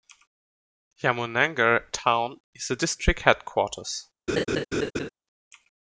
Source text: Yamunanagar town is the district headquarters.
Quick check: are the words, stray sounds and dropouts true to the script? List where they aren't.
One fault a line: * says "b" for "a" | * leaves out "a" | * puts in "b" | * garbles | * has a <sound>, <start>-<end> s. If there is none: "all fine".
* has a laugh, 4.3-5.1 s